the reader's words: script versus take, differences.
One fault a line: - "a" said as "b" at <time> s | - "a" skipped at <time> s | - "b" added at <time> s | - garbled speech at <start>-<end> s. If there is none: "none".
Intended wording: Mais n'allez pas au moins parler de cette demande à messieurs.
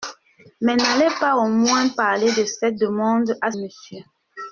none